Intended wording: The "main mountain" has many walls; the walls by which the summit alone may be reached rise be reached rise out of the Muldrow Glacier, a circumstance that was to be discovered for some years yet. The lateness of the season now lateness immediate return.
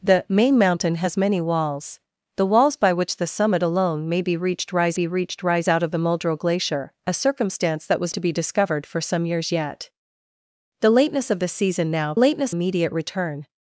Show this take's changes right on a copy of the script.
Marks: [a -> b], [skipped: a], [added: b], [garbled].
The "main mountain" has many walls; the walls by which the summit alone may be reached rise be reached rise out of the Muldrow Glacier, a circumstance that was to be discovered for some years yet. The lateness of the season now lateness immediate return.